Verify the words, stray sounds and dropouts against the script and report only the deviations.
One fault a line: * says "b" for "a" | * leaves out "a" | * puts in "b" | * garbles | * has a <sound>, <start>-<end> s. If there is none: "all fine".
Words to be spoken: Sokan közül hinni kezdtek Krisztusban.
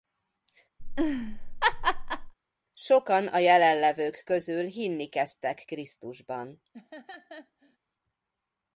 * has a laugh, 0.8-2.3 s
* puts in "a jelenlevők"
* has a laugh, 6.7-7.8 s